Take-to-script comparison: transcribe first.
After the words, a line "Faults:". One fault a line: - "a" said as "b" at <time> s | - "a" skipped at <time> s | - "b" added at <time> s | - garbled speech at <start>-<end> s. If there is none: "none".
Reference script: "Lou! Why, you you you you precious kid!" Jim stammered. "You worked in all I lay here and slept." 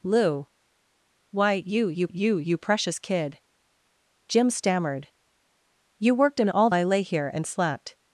"Lou! Why, you you you you precious kid!" Jim stammered. "You worked in all I lay here and slept."
Faults:
none